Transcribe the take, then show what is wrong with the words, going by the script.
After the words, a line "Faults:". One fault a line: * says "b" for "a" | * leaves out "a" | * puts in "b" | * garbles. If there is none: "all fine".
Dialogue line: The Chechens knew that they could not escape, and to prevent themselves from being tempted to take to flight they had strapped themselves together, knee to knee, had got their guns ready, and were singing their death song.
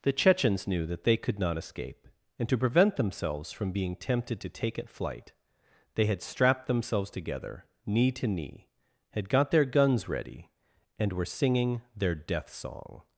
The Chechens knew that they could not escape, and to prevent themselves from being tempted to take at flight they had strapped themselves together, knee to knee, had got their guns ready, and were singing their death song.
Faults:
* says "at" for "to"